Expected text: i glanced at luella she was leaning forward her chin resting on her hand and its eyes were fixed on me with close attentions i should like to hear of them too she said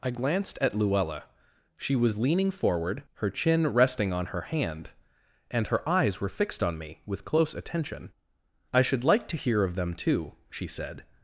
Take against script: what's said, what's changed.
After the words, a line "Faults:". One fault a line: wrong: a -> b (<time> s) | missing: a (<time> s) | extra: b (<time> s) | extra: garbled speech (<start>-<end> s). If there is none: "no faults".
i glanced at luella she was leaning forward her chin resting on her hand and her eyes were fixed on me with close attention i should like to hear of them too she said
Faults:
wrong: its -> her (5.7 s)
wrong: attentions -> attention (7.5 s)